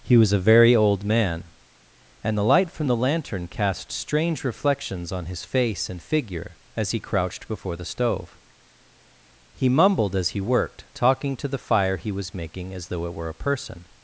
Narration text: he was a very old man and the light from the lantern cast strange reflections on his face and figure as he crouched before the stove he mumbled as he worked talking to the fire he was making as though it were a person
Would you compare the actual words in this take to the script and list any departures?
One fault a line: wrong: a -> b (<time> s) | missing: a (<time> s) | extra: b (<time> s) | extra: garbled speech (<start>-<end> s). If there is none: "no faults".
no faults